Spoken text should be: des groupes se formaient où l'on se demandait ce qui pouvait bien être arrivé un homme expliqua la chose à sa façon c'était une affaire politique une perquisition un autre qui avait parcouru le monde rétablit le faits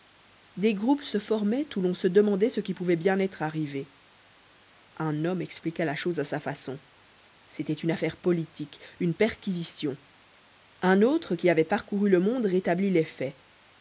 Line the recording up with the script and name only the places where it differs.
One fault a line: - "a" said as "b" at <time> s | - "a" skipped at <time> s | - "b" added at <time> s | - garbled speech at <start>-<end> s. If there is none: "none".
- "le" said as "les" at 12.9 s